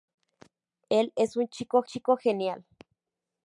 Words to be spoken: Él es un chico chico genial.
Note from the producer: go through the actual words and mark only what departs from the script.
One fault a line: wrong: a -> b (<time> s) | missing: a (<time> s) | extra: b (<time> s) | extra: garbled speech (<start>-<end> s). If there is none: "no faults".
no faults